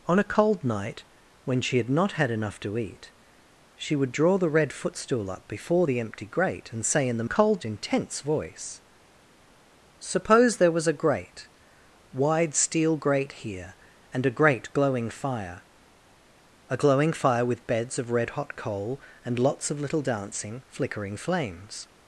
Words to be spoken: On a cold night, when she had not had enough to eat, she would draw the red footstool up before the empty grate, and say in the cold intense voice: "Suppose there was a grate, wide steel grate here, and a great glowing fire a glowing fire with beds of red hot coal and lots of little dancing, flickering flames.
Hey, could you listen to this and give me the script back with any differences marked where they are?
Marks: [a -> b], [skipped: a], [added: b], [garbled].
On a cold night, when she had not had enough to eat, she would draw the red footstool up before the empty grate, and say in the cold intense voice: "Suppose there was a grate, wide steel grate here, and a great glowing fire a glowing fire with beds of red hot coal and lots of little dancing, flickering flames.